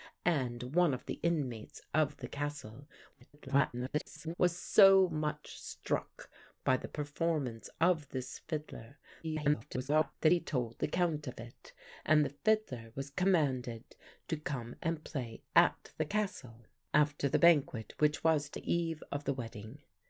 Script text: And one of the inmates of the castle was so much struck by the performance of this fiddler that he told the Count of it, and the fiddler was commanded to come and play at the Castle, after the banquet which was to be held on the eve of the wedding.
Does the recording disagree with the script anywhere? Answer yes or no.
yes